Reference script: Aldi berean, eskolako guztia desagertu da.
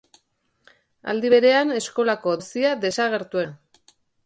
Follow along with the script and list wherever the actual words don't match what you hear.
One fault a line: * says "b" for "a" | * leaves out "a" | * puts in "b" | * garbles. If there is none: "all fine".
all fine